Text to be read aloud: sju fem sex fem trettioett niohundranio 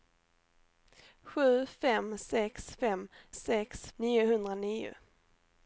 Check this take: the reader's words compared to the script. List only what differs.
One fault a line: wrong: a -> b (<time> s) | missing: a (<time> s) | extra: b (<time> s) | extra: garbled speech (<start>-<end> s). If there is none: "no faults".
wrong: trettioett -> sex (3.3 s)